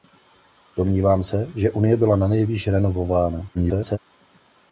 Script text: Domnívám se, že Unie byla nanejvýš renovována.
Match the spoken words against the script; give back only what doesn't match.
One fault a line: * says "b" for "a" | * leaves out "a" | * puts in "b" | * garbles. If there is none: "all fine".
* garbles